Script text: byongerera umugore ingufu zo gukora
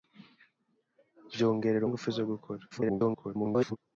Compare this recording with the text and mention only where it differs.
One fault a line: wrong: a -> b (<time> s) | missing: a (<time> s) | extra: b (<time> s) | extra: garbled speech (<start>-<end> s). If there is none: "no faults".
missing: umugore (1.9 s)
extra: garbled speech (2.7-3.8 s)